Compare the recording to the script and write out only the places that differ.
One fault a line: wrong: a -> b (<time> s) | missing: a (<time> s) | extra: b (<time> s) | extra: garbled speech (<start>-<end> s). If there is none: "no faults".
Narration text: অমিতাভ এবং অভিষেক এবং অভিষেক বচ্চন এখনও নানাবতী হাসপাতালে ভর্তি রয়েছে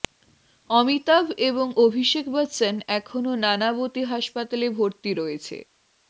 missing: এবং অভিষেক (2.2 s)